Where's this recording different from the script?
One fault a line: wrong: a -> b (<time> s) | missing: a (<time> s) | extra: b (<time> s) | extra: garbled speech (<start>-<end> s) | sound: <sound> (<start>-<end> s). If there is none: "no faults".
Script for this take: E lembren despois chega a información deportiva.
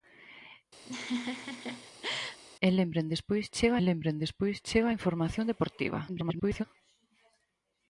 sound: laugh (0.8-2.4 s)
extra: lembren despois chega (3.9 s)
extra: garbled speech (6.1-6.6 s)